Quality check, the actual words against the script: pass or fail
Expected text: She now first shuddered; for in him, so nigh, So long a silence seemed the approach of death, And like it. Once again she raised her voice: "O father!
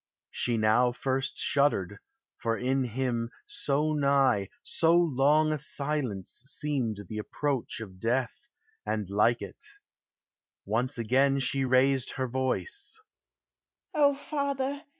pass